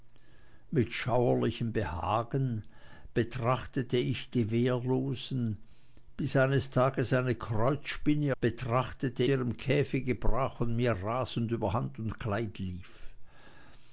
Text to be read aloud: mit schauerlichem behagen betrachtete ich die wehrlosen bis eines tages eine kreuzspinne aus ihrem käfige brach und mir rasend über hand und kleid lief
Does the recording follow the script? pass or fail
fail